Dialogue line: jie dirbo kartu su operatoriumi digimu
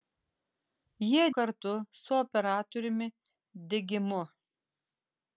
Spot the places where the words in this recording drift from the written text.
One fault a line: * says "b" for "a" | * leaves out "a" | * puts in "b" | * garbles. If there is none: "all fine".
* leaves out "dirbo"